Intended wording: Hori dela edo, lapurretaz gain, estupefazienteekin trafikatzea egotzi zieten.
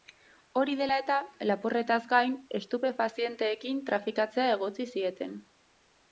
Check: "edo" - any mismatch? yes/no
yes